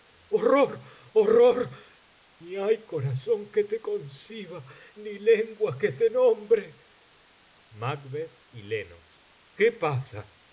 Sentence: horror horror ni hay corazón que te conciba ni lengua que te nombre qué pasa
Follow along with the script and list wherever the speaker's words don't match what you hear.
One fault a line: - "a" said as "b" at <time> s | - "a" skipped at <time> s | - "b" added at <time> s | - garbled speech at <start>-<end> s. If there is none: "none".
none